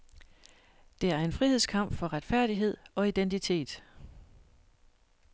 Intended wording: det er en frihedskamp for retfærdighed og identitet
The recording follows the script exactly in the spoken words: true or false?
true